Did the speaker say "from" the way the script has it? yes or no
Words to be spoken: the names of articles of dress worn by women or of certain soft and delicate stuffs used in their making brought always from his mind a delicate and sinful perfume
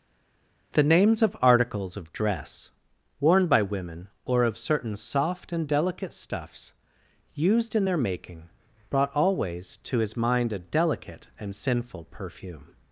no